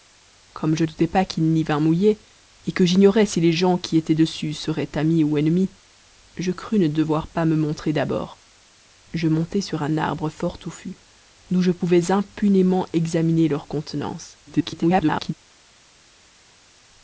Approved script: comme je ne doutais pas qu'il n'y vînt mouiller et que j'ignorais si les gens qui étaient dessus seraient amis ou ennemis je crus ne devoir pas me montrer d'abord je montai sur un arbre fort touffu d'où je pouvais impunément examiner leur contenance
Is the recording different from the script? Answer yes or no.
yes